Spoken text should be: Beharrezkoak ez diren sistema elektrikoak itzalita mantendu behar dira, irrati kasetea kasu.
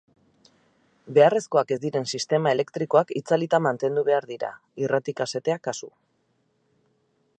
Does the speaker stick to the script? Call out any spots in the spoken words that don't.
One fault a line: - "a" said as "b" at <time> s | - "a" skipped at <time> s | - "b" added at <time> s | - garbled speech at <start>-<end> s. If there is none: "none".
none